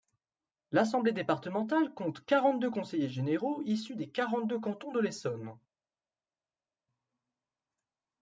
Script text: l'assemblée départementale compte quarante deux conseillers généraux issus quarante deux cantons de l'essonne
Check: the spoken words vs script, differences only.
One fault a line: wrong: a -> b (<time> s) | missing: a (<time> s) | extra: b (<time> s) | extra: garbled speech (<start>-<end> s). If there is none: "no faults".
extra: des (4.0 s)